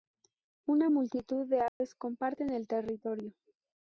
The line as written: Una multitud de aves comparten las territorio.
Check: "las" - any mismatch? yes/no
yes